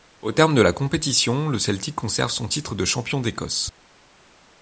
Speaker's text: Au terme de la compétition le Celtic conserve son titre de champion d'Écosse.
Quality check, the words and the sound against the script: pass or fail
pass